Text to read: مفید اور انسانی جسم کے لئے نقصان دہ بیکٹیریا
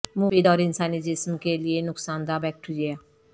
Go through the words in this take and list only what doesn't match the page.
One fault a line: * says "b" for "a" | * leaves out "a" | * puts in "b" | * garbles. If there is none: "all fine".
all fine